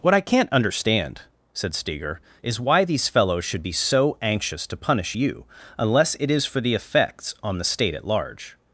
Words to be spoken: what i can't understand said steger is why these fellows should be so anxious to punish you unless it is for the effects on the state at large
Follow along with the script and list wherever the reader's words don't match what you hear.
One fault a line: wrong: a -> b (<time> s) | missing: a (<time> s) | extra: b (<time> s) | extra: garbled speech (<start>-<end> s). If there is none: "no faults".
no faults